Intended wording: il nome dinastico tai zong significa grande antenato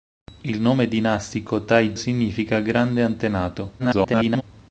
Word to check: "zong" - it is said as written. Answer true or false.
false